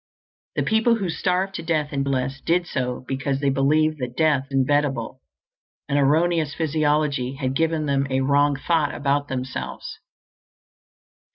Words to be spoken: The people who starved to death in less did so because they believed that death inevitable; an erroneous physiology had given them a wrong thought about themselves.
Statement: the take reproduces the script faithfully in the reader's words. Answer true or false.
true